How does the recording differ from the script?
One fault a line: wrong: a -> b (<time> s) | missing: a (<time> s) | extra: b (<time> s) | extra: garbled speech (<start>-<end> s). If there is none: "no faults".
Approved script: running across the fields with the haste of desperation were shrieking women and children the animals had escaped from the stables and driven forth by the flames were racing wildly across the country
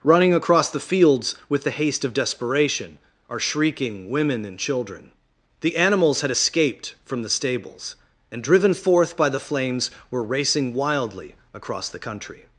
wrong: were -> are (3.3 s)